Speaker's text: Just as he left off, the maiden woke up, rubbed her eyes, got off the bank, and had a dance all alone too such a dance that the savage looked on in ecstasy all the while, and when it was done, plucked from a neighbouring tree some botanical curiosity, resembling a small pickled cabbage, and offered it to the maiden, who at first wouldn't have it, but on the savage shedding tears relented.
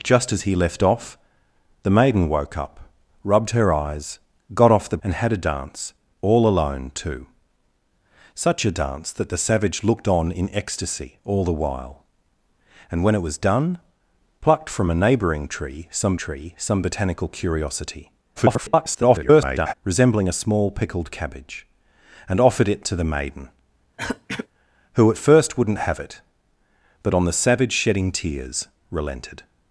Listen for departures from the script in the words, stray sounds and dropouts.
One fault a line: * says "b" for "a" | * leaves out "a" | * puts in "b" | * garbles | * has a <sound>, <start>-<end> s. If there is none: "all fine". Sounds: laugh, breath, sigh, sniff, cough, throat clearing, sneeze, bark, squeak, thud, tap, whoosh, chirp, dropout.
* leaves out "bank"
* puts in "tree some"
* garbles
* has a throat clearing, 24.0-24.5 s